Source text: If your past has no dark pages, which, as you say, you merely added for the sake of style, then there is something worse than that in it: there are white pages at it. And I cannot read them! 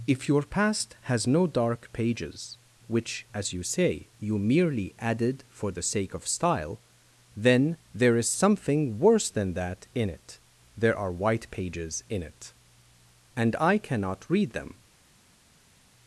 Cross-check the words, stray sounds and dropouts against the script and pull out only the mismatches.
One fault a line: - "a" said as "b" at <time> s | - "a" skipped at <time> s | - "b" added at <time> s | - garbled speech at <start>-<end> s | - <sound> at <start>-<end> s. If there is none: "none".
- "at" said as "in" at 12.1 s